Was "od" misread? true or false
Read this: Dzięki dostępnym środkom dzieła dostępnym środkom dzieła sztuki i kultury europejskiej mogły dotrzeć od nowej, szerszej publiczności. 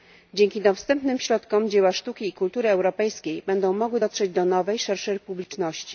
true